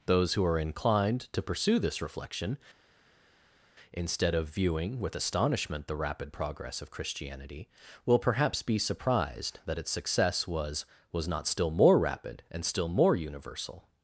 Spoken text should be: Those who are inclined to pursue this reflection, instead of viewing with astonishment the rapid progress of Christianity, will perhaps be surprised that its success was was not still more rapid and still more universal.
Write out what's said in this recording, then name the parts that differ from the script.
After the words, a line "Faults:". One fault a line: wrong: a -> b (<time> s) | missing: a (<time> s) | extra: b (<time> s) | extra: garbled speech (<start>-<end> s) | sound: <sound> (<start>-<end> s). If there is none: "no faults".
Those who are inclined to pursue this reflection, instead of viewing with astonishment the rapid progress of Christianity, will perhaps be surprised that its success was was not still more rapid and still more universal.
Faults:
no faults